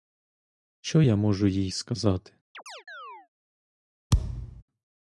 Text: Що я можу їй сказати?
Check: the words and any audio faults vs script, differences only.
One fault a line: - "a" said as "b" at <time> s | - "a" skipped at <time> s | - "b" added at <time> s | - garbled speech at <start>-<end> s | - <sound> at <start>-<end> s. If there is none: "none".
- chirp at 2.5-3.3 s
- thud at 4.1-4.6 s